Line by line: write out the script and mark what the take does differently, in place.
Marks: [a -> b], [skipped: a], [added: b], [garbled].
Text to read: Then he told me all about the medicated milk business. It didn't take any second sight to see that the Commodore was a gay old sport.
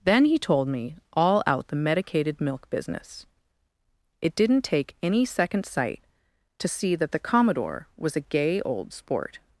Then he told me all [about -> out] the medicated milk business. It didn't take any second sight to see that the Commodore was a gay old sport.